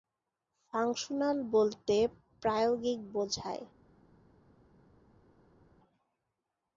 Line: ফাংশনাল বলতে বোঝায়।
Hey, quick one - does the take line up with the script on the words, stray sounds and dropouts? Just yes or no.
no